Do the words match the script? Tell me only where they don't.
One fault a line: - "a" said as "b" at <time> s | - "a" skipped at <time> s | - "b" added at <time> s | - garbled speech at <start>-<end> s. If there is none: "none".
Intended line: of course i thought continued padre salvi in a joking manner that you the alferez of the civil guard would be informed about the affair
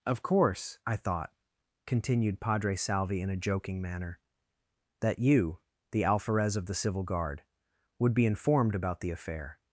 none